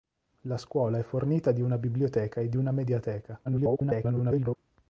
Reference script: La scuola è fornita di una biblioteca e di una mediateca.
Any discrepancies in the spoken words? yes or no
yes